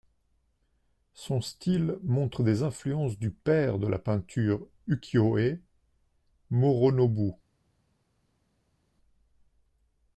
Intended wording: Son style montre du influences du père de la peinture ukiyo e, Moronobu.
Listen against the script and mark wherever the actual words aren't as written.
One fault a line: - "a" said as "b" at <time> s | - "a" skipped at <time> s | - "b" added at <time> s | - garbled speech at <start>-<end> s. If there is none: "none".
- "du" said as "des" at 2.4 s